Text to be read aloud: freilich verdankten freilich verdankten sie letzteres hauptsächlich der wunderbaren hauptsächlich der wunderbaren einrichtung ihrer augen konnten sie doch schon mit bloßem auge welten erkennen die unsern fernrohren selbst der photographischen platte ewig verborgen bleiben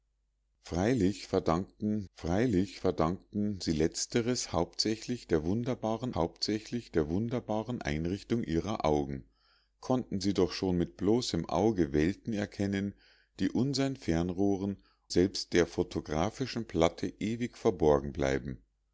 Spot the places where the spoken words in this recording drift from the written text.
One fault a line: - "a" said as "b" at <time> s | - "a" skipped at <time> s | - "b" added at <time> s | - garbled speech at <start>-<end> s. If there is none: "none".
none